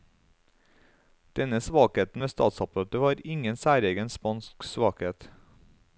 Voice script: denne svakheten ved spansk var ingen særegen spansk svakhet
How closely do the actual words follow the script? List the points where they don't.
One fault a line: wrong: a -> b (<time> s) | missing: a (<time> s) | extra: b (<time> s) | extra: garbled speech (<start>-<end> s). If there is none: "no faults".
wrong: spansk -> statsapparatet (2.3 s)